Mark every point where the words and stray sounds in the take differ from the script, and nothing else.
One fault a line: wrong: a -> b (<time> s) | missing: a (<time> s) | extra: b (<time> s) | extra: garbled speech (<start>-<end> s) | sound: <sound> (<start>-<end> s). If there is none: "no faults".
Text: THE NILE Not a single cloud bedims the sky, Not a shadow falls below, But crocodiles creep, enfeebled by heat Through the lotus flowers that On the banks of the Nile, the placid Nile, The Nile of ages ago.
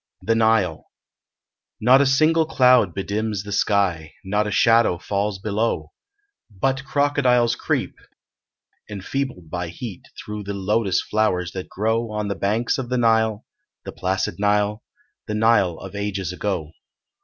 extra: grow (11.7 s)